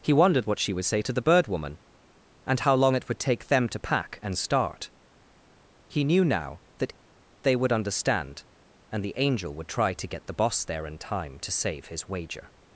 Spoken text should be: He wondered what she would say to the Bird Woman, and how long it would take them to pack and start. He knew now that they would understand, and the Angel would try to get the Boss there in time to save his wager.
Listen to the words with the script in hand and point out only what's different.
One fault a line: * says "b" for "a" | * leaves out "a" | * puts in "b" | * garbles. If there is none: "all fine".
all fine